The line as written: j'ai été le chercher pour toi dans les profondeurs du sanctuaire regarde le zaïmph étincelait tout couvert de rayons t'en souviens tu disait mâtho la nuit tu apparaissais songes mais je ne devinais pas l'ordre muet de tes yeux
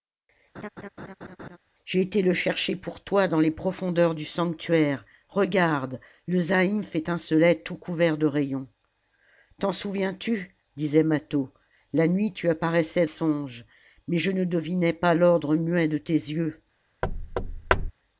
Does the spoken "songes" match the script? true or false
true